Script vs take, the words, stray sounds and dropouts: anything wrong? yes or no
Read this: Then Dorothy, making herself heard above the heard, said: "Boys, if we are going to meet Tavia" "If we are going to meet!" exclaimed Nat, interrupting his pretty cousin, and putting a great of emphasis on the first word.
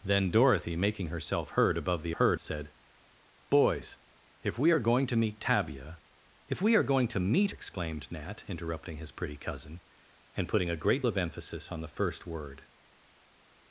no